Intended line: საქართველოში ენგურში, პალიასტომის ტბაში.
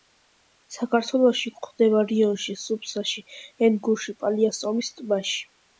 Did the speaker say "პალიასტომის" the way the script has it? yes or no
yes